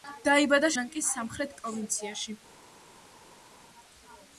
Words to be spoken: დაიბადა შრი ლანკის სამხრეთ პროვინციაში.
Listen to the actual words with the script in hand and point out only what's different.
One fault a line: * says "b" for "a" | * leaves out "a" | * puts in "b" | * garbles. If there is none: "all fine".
* leaves out "შრი"